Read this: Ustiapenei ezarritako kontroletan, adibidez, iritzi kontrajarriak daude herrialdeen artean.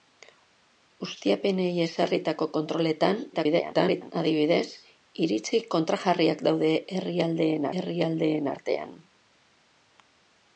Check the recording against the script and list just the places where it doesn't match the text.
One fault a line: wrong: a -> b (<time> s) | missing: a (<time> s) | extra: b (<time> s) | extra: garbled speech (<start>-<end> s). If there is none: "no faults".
extra: garbled speech (3.3-4.1 s)
extra: herrialdeen (7.8 s)